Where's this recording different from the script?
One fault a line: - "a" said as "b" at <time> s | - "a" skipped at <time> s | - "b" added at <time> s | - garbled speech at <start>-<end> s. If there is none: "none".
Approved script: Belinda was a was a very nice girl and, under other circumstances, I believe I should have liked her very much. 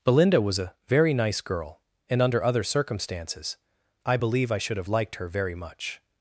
- "was a" skipped at 0.7 s